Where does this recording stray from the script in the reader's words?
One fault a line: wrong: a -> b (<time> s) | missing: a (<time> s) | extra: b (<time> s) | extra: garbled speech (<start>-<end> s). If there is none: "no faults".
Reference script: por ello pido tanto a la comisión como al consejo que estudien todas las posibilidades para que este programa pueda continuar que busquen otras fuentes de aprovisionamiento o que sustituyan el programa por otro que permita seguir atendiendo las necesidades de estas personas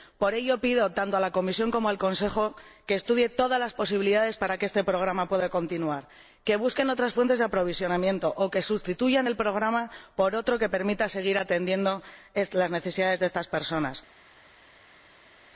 no faults